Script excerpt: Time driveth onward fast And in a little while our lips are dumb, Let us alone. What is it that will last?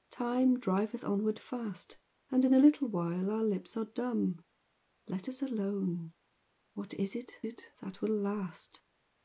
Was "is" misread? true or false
false